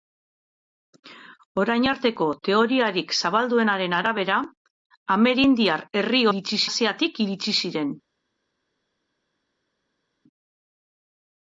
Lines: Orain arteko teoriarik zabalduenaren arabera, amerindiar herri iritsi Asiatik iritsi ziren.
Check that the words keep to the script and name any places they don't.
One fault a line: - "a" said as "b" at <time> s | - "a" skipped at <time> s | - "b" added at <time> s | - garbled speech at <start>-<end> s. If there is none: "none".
none